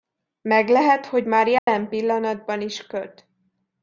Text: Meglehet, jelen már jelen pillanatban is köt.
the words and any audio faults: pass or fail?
fail